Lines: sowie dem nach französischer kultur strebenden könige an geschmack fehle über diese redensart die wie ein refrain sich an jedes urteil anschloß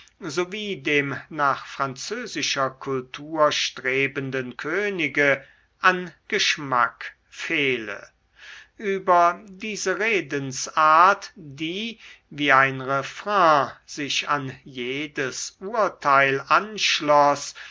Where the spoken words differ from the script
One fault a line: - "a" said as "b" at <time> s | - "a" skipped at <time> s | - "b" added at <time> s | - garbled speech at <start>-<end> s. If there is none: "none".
none